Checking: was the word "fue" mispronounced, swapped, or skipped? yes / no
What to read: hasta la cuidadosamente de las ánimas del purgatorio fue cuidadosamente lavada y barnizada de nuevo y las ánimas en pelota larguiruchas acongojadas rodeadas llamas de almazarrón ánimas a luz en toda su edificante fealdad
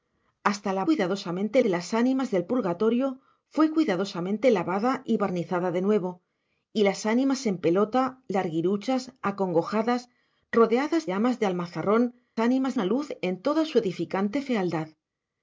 no